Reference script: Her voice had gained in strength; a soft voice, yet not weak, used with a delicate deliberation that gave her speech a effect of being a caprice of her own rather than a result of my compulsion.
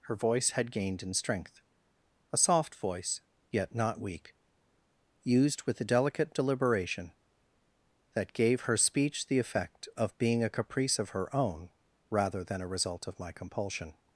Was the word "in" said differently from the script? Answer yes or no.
no